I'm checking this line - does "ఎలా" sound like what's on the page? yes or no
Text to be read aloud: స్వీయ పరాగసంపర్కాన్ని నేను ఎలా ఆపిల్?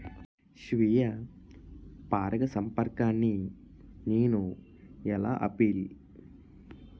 yes